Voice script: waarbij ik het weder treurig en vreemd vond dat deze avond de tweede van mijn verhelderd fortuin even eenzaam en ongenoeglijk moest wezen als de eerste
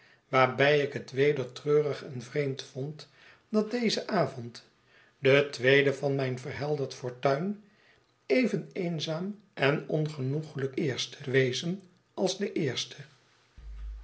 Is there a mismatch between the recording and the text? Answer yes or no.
yes